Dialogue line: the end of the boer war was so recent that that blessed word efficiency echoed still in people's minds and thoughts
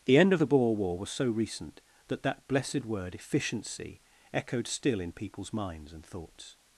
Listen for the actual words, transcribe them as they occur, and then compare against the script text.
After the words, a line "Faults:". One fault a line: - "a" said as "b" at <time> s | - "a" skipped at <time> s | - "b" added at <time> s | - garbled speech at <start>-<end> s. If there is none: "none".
the end of the boer war was so recent that that blessed word efficiency echoed still in people's minds and thoughts
Faults:
none